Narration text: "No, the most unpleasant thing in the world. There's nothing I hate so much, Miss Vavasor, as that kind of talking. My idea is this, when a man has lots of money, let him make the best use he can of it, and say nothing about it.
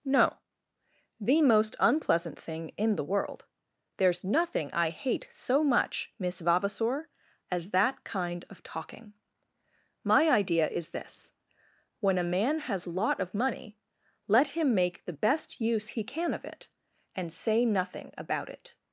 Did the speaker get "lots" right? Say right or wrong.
wrong